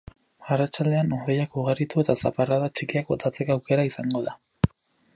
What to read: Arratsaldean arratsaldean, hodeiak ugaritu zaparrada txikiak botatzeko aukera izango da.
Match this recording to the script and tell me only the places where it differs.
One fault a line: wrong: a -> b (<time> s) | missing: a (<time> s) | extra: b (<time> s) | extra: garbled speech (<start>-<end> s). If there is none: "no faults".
missing: arratsaldean (1.1 s)
extra: eta (2.0 s)